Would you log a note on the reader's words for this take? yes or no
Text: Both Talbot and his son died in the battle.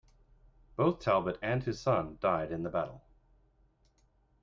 no